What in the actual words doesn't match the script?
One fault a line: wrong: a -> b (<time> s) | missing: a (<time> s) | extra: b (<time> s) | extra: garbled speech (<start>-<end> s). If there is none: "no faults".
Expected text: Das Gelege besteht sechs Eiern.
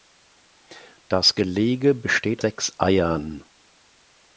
no faults